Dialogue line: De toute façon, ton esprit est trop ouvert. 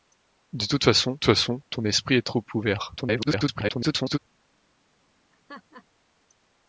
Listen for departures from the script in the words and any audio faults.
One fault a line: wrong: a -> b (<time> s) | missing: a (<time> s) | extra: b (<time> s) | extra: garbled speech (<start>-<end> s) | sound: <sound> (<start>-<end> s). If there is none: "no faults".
extra: façon (1.2 s)
extra: garbled speech (3.0-4.2 s)
sound: laugh (5.3-5.8 s)